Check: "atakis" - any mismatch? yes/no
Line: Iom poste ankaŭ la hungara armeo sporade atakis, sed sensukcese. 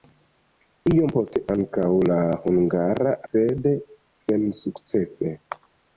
yes